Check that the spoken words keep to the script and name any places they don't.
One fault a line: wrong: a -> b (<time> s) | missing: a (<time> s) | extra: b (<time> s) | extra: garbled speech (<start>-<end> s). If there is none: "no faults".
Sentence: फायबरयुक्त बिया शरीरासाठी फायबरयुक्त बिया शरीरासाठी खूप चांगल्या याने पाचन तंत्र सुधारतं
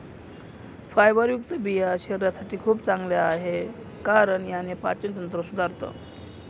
wrong: फायबरयुक्त बिया शरीरासाठी खूप चांगल्या -> खूप चांगल्या आहे कारण (2.6 s)